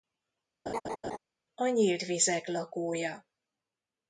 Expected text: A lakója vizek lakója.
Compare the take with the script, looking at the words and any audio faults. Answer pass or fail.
fail